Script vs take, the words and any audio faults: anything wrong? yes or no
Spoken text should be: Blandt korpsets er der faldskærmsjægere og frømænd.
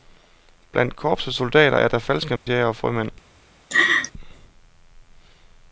yes